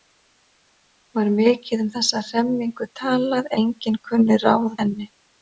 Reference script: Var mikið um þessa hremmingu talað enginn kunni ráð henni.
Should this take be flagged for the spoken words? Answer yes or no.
no